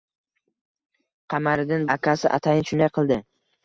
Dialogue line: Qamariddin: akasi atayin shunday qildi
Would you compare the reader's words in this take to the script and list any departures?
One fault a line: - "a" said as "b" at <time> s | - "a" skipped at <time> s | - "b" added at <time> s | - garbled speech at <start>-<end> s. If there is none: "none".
none